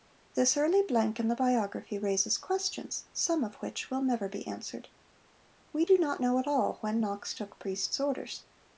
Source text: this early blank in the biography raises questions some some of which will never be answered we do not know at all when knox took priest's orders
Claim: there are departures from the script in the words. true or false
true